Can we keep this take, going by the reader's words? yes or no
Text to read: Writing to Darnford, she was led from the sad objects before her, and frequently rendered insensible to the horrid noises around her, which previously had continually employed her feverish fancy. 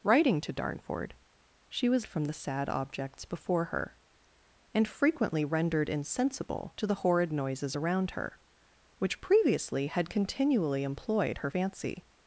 no